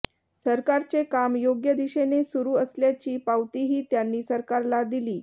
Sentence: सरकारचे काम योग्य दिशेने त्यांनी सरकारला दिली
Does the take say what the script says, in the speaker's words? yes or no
no